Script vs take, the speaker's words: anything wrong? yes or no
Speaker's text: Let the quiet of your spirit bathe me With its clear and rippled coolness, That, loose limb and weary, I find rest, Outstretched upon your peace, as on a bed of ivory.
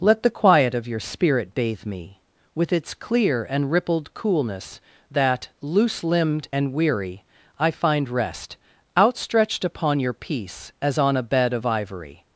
yes